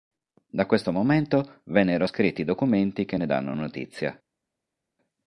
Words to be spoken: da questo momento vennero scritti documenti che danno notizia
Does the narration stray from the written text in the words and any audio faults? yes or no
yes